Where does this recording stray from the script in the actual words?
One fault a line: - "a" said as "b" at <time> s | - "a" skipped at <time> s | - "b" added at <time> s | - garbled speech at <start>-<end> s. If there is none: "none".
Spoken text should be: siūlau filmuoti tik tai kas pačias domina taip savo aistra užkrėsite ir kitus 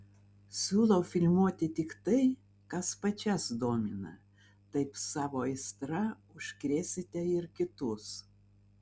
none